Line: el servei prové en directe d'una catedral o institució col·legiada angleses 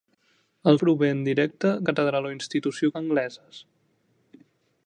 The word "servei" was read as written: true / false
false